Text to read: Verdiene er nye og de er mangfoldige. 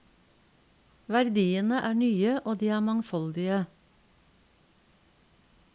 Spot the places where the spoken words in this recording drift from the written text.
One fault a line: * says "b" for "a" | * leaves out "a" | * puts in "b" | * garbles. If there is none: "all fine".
all fine